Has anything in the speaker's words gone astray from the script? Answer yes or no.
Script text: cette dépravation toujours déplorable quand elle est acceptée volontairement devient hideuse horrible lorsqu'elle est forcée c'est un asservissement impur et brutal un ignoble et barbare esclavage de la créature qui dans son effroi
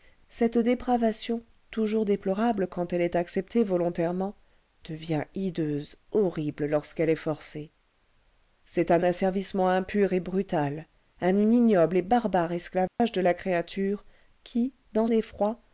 yes